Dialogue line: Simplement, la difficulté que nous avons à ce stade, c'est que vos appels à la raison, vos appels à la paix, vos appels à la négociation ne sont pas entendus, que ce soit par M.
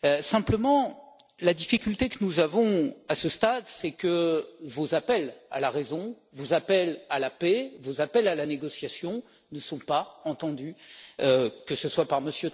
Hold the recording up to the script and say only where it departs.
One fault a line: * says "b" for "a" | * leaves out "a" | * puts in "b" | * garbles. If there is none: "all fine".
all fine